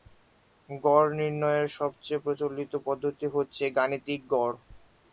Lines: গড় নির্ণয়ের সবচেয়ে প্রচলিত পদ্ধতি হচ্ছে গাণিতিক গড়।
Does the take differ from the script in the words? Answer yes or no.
no